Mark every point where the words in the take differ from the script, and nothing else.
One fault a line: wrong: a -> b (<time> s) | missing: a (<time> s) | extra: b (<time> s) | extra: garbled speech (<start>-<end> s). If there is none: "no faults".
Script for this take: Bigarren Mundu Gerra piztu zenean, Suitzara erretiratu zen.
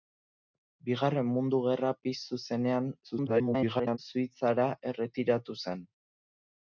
extra: garbled speech (3.0-4.0 s)